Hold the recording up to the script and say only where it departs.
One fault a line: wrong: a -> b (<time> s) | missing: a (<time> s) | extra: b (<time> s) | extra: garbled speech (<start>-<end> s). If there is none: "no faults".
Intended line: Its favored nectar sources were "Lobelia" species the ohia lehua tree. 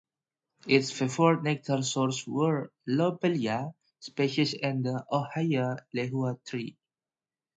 extra: and (4.5 s)